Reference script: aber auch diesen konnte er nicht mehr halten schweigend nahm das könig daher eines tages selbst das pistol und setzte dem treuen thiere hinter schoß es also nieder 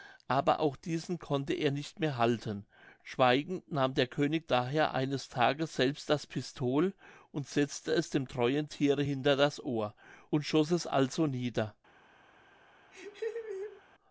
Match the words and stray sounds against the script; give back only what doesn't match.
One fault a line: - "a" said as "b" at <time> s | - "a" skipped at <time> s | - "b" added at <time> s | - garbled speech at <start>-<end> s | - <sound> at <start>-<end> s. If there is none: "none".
- "das" said as "der" at 3.9 s
- "es" added at 7.9 s
- "das ohr und" added at 9.3 s
- laugh at 12.9-13.8 s